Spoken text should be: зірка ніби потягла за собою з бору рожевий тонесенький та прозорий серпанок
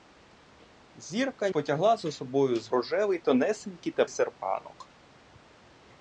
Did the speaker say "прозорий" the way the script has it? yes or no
no